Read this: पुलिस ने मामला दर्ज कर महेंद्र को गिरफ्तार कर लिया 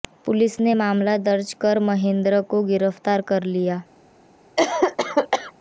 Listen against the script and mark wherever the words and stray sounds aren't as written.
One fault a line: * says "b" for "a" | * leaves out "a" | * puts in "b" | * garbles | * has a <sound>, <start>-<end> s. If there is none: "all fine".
* has a cough, 4.6-5.5 s